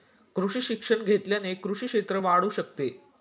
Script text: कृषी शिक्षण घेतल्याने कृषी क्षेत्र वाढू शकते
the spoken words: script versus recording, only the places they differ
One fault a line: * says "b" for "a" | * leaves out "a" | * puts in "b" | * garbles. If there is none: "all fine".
all fine